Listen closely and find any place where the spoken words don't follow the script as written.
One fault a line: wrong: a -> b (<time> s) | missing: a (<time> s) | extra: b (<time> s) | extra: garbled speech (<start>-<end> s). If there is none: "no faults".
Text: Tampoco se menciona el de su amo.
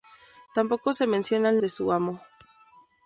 no faults